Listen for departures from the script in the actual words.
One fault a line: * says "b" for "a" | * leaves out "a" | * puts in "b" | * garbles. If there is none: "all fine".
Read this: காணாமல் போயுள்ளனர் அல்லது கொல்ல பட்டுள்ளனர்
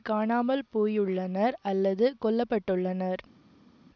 all fine